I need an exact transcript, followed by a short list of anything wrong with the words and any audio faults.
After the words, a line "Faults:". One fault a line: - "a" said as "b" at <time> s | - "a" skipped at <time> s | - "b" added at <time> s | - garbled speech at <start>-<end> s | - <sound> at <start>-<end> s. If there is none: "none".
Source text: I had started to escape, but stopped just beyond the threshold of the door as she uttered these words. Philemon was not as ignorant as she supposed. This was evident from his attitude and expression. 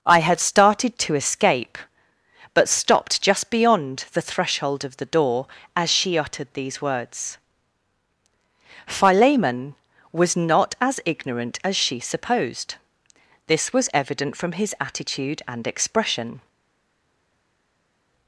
I had started to escape, but stopped just beyond the threshold of the door as she uttered these words. Philemon was not as ignorant as she supposed. This was evident from his attitude and expression.
Faults:
none